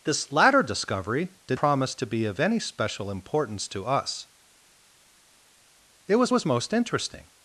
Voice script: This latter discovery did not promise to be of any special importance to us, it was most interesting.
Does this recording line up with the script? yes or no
no